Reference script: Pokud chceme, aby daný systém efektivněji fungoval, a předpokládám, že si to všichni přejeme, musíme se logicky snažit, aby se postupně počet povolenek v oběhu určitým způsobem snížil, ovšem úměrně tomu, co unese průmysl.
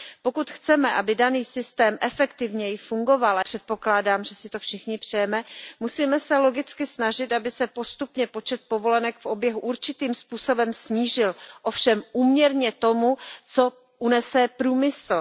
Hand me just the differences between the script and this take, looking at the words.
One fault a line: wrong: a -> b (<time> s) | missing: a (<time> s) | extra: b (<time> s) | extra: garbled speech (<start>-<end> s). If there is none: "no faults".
no faults